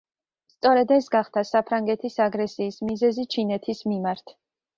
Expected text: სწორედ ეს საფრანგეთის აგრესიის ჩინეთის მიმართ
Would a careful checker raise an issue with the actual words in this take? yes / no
yes